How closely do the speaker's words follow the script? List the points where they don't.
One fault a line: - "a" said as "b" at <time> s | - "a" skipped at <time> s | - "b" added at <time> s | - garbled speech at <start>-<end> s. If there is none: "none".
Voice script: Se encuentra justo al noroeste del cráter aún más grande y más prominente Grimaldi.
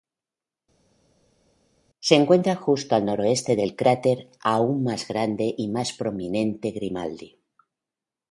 none